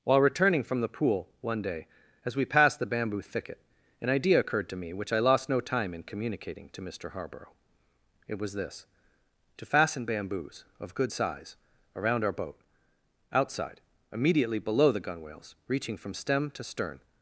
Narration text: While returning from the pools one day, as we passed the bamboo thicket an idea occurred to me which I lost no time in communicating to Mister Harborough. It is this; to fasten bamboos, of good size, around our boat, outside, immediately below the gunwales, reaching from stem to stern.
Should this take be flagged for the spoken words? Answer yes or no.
yes